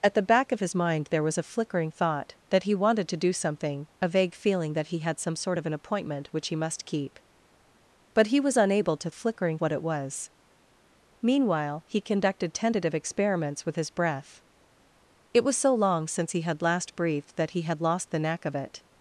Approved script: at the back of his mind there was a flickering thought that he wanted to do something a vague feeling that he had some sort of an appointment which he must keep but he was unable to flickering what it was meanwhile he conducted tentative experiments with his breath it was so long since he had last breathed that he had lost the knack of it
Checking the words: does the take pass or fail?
pass